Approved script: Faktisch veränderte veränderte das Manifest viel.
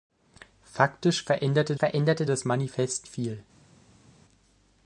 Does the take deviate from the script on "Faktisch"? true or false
false